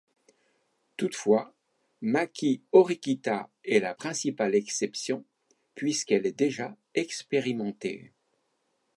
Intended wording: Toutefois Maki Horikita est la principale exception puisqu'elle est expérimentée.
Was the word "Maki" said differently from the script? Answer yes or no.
no